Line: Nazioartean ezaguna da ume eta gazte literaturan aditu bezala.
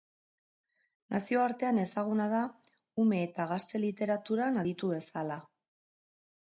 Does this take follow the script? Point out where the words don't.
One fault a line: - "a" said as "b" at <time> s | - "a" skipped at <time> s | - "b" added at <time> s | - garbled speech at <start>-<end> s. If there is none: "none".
none